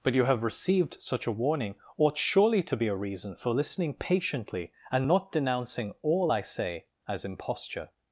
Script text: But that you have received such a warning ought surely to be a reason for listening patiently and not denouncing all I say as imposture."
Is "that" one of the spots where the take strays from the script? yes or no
yes